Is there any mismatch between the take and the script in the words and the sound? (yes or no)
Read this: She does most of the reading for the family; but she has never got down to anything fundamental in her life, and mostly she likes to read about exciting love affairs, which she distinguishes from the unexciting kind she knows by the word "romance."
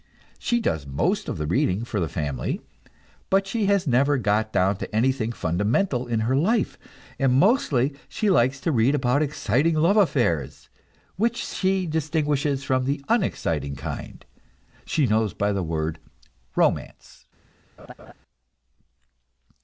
yes